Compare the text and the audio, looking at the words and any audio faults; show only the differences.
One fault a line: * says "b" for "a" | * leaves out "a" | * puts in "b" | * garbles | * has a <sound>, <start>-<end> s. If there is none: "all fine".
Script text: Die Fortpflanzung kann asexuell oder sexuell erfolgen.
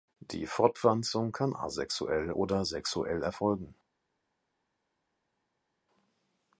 all fine